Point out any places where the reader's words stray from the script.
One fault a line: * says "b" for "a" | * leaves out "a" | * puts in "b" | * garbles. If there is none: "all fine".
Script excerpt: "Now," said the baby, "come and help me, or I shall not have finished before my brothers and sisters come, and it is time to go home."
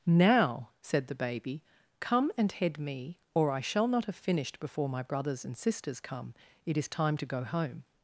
* says "head" for "help"
* leaves out "and"